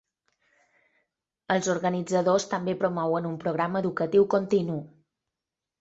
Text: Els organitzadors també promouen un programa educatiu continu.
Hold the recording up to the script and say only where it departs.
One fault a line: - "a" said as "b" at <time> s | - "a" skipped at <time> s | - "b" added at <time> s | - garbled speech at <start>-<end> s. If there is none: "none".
none